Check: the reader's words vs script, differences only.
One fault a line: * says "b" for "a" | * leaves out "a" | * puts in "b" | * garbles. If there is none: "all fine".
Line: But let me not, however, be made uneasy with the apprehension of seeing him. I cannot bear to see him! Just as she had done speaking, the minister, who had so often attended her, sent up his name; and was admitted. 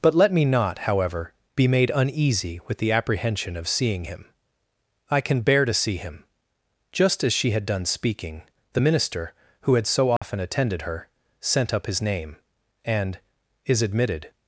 * says "can" for "cannot"
* says "is" for "was"